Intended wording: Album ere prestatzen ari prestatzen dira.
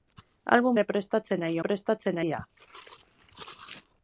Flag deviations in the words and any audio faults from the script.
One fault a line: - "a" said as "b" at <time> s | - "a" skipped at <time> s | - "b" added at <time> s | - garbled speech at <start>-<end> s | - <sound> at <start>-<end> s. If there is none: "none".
none